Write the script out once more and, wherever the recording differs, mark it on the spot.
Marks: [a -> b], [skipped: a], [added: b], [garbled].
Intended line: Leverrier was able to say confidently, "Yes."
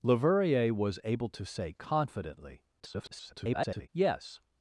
Leverrier was able to say confidently, [garbled] "Yes."